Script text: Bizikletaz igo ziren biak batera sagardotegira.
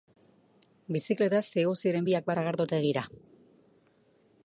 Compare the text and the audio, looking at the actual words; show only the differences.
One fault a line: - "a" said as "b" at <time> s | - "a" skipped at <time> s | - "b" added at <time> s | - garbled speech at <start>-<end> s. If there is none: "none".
- "batera" skipped at 2.3 s